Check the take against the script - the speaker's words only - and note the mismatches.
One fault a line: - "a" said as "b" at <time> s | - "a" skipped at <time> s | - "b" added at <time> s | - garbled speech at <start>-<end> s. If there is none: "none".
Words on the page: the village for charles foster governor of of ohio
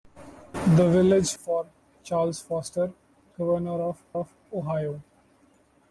none